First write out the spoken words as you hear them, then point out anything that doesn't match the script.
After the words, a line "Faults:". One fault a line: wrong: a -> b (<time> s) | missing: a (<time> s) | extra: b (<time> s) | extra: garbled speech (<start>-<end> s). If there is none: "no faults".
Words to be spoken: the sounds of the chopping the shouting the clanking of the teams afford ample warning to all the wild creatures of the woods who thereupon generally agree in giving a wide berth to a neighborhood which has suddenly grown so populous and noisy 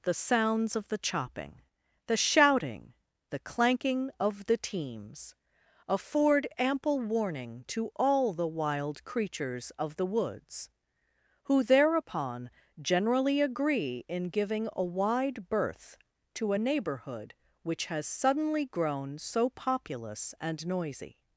the sounds of the chopping the shouting the clanking of the teams afford ample warning to all the wild creatures of the woods who thereupon generally agree in giving a wide berth to a neighborhood which has suddenly grown so populous and noisy
Faults:
no faults